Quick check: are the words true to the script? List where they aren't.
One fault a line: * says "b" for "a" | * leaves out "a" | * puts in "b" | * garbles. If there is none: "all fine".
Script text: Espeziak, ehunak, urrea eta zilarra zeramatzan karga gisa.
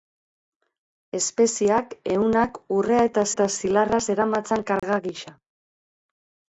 * puts in "eta"